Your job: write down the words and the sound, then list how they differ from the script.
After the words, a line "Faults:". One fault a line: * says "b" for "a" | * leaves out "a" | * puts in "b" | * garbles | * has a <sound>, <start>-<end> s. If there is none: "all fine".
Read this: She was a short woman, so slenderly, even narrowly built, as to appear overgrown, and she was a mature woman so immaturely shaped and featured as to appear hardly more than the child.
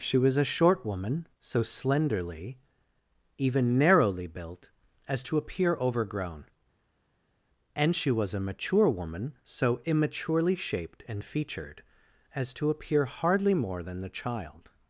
She was a short woman, so slenderly, even narrowly built, as to appear overgrown, and she was a mature woman so immaturely shaped and featured as to appear hardly more than the child.
Faults:
all fine